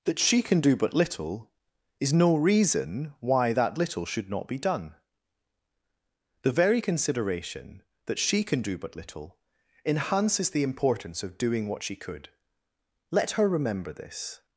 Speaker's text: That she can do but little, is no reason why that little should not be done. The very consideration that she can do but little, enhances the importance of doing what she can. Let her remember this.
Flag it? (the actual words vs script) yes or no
yes